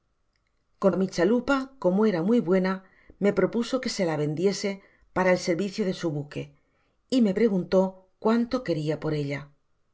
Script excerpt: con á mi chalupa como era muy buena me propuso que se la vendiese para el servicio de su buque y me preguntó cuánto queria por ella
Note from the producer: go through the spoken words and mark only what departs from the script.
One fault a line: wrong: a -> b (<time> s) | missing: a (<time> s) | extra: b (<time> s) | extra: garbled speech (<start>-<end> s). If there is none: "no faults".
no faults